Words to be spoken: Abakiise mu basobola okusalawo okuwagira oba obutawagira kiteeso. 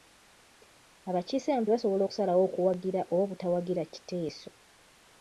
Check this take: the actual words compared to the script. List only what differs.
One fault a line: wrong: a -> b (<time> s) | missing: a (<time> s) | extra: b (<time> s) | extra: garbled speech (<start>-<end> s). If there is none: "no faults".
no faults